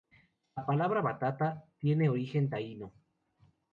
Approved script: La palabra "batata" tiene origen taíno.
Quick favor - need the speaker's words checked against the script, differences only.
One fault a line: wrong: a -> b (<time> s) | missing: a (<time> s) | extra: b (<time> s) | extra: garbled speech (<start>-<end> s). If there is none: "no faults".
no faults